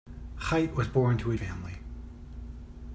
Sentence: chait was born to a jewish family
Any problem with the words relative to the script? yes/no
yes